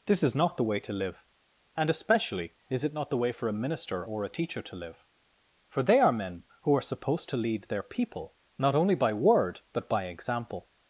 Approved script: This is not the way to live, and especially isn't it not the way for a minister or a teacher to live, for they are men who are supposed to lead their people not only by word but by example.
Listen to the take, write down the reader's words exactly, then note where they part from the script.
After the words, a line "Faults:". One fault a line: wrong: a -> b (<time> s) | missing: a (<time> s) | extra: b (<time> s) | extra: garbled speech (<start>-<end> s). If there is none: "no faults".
This is not the way to live, and especially is it not the way for a minister or a teacher to live, for they are men who are supposed to lead their people not only by word but by example.
Faults:
wrong: isn't -> is (2.7 s)